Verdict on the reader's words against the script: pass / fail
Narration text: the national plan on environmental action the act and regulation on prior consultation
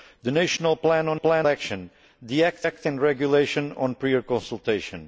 fail